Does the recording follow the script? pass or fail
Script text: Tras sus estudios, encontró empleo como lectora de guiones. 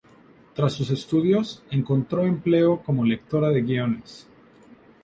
pass